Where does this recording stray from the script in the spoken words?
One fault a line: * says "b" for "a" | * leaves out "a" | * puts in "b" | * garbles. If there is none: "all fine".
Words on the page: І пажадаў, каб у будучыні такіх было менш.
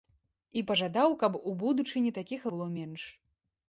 all fine